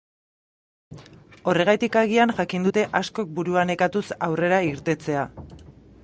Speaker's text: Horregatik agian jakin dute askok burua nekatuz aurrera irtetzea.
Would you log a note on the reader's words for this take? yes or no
no